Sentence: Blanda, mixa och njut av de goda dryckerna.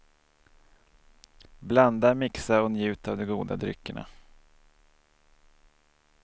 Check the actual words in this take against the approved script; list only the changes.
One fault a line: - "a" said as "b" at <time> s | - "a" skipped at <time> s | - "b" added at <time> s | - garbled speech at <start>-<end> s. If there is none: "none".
none